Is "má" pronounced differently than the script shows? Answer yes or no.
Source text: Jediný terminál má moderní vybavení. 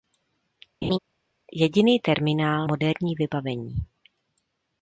yes